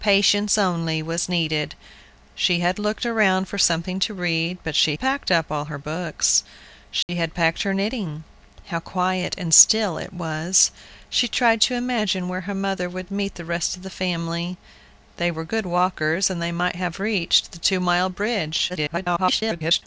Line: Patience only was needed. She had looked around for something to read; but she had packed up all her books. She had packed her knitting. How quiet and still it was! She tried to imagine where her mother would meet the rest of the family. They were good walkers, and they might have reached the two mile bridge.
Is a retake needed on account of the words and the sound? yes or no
yes